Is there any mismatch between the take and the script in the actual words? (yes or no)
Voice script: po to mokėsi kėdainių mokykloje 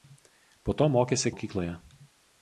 yes